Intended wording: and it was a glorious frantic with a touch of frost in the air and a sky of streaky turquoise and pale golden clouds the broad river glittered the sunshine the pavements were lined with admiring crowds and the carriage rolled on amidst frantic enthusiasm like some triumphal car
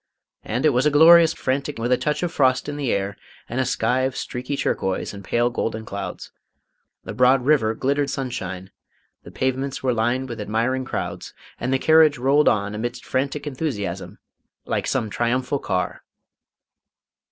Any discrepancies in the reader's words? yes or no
no